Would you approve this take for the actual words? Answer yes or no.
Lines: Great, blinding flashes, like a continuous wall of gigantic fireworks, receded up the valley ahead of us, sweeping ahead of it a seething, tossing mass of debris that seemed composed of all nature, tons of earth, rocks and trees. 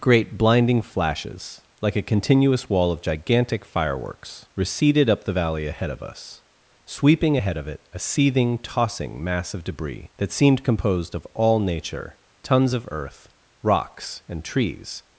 yes